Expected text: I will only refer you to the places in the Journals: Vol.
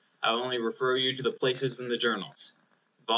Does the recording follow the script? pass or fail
pass